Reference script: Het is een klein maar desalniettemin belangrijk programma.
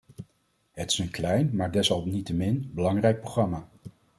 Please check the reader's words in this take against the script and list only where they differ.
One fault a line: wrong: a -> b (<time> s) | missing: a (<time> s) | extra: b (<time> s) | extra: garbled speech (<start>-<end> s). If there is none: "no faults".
no faults